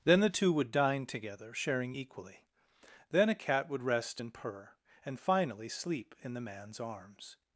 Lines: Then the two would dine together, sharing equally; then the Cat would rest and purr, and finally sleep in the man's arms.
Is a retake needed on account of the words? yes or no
yes